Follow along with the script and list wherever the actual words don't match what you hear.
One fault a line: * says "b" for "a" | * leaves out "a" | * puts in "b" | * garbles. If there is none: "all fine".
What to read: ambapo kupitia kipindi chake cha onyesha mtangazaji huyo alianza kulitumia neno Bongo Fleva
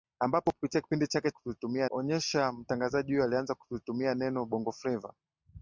* says "kulitumia" for "cha"